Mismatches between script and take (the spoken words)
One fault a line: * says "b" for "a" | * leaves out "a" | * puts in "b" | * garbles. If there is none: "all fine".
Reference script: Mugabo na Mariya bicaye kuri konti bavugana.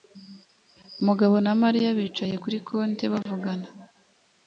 all fine